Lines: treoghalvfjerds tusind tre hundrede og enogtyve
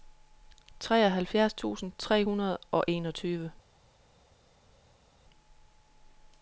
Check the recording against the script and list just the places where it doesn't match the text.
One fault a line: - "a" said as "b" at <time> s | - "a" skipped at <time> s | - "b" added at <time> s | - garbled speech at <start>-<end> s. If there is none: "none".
none